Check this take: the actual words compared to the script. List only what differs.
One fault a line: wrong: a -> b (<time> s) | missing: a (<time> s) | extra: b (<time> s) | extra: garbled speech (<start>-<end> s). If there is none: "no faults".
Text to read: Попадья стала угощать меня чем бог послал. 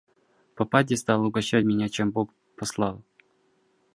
no faults